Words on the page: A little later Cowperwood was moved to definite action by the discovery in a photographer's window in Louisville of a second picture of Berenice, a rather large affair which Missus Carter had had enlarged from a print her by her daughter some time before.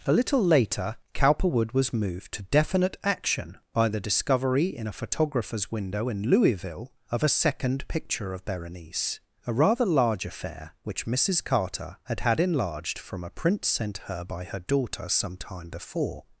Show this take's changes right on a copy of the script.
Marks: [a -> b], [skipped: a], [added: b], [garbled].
A little later Cowperwood was moved to definite action by the discovery in a photographer's window in Louisville of a second picture of Berenice, a rather large affair which Missus Carter had had enlarged from a print [added: sent] her by her daughter some time before.